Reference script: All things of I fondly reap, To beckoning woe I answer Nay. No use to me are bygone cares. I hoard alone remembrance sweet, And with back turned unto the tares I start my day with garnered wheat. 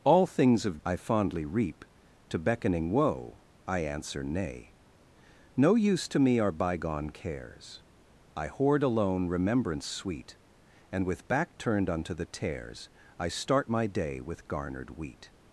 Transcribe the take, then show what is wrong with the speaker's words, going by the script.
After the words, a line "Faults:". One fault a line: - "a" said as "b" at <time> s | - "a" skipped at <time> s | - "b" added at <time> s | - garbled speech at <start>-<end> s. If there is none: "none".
All things of I fondly reap, To beckoning woe I answer Nay. No use to me are bygone cares. I hoard alone remembrance sweet, And with back turned unto the tares I start my day with garnered wheat.
Faults:
none